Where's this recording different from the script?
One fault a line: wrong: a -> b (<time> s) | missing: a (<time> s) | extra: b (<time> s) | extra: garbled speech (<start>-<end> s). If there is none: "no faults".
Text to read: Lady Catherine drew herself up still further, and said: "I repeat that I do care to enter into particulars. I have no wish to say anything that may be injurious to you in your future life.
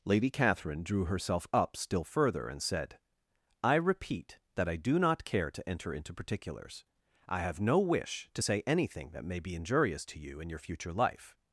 extra: not (5.0 s)